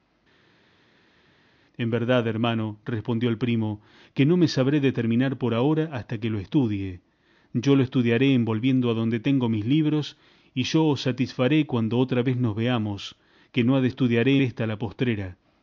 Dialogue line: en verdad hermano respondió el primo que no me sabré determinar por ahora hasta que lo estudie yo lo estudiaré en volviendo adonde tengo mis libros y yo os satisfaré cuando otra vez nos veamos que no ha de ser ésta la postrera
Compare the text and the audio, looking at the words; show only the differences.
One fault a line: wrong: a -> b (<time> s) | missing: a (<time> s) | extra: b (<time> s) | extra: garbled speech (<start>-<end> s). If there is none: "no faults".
wrong: ser -> estudiaré (13.9 s)